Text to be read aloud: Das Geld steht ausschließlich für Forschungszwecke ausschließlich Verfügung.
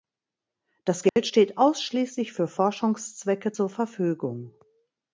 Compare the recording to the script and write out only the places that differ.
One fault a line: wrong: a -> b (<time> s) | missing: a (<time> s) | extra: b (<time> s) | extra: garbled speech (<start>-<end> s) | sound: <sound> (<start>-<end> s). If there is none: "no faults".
sound: dropout (1.1-1.2 s)
wrong: ausschließlich -> zur (3.5 s)